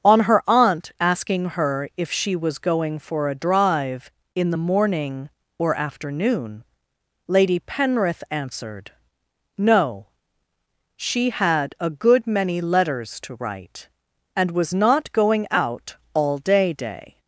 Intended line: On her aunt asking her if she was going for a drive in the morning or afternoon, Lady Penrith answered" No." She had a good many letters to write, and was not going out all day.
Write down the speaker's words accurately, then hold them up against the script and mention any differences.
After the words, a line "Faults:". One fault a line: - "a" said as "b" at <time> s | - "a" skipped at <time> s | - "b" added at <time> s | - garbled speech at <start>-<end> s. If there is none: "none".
On her aunt asking her if she was going for a drive in the morning or afternoon, Lady Penrith answered" No." She had a good many letters to write, and was not going out all day day.
Faults:
- "day" added at 16.7 s